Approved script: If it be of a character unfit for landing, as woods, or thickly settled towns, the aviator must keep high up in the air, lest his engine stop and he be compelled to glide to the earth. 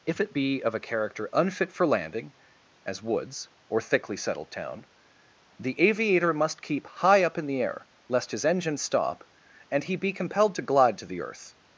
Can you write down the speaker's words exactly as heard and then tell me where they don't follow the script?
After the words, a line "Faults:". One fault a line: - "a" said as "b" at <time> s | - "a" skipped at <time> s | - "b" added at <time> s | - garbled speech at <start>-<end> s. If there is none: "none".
If it be of a character unfit for landing, as woods, or thickly settled town, the aviator must keep high up in the air, lest his engine stop and he be compelled to glide to the earth.
Faults:
- "towns" said as "town" at 4.5 s